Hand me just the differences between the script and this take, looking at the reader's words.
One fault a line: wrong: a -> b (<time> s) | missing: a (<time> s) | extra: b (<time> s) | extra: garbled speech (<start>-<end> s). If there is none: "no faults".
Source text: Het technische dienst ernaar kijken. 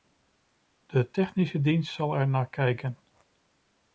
wrong: Het -> De (0.8 s)
extra: zal (1.9 s)